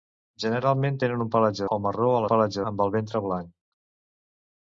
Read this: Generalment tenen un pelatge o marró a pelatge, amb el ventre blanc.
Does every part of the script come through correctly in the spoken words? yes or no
yes